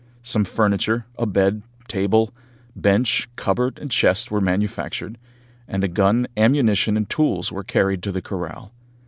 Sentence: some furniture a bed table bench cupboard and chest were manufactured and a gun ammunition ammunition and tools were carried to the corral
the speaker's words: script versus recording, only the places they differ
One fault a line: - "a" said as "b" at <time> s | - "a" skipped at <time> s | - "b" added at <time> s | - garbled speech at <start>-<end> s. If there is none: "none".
- "ammunition" skipped at 7.0 s